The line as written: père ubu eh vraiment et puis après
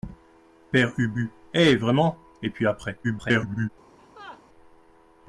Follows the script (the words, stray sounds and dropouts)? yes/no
no